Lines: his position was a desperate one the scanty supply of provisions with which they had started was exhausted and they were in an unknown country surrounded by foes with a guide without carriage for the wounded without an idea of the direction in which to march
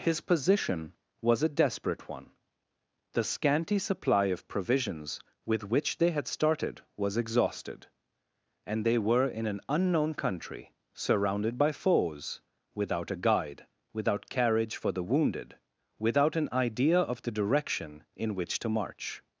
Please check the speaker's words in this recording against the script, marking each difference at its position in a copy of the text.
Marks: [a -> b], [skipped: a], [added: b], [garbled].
his position was a desperate one the scanty supply of provisions with which they had started was exhausted and they were in an unknown country surrounded by foes [with -> without] a guide without carriage for the wounded without an idea of the direction in which to march